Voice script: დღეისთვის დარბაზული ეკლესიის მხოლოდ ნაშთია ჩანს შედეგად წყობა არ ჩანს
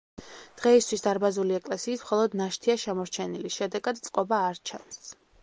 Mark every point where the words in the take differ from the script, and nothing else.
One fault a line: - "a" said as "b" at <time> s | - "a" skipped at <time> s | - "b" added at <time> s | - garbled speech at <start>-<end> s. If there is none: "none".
- "ჩანს" said as "შემორჩენილი" at 2.9 s